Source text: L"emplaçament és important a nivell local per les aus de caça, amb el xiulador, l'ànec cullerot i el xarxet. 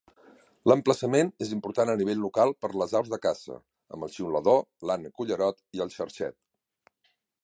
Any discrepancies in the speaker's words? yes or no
no